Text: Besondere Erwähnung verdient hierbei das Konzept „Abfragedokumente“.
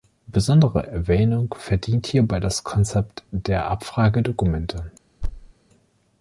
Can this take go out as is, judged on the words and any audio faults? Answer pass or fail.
fail